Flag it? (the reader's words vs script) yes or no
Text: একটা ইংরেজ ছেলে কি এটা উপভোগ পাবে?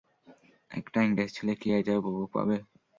no